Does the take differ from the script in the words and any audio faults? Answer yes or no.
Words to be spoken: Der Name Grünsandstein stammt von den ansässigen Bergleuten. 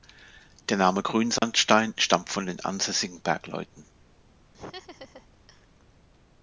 yes